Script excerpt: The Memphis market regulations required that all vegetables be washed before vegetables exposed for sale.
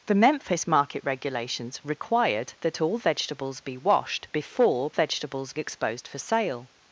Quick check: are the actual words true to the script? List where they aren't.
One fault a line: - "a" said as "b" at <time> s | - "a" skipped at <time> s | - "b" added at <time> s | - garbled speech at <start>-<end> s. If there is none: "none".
none